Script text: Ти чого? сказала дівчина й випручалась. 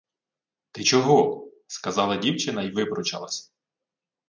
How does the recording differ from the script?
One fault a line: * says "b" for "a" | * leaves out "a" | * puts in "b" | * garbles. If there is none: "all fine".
all fine